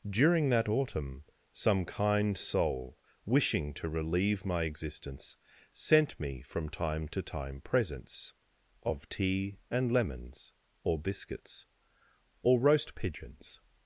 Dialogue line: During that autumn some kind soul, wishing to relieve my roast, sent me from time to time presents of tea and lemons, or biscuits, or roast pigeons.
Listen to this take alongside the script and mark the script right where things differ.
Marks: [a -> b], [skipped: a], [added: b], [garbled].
During that autumn some kind soul, wishing to relieve my [roast, -> existence] sent me from time to time presents of tea and lemons, or biscuits, or roast pigeons.